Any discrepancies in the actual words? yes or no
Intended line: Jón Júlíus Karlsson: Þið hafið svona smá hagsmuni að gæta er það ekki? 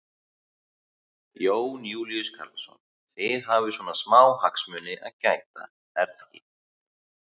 yes